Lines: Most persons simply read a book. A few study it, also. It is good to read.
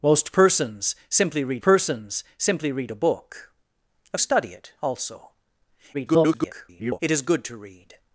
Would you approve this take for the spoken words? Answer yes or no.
no